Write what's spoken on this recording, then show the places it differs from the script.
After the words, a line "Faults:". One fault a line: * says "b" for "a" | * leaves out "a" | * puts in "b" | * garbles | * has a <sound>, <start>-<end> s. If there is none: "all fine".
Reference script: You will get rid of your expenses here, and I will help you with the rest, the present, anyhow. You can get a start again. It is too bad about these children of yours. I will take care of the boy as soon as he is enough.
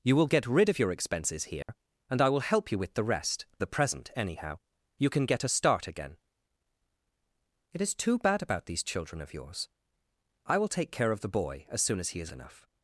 You will get rid of your expenses here, and I will help you with the rest, the present, anyhow. You can get a start again. It is too bad about these children of yours. I will take care of the boy as soon as he is enough.
Faults:
* has a dropout, 1.6-1.7 s